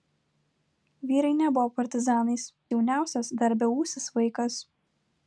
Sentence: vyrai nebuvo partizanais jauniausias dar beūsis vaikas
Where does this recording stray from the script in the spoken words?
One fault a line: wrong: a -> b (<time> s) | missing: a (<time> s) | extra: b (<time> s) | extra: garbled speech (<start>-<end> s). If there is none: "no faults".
no faults